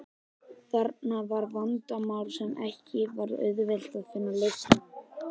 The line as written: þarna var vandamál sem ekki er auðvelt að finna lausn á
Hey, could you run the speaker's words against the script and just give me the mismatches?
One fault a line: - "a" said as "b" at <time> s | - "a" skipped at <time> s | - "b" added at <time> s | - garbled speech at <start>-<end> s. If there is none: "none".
- "er" said as "var" at 3.2 s